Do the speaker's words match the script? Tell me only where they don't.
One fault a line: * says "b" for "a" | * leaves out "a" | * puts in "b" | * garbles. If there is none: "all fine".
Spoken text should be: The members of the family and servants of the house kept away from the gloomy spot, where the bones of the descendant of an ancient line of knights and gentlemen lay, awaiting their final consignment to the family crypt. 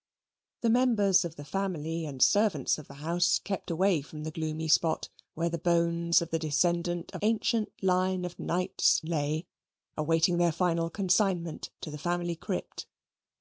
* leaves out "an"
* leaves out "and gentlemen"